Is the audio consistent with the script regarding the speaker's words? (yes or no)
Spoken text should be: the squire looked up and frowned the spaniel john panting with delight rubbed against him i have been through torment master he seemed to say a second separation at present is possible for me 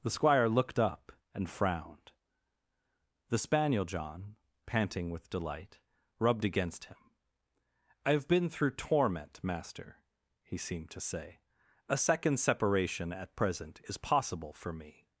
yes